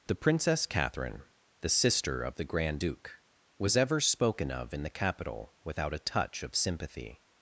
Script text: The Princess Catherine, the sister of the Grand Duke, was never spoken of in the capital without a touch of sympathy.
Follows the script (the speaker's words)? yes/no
no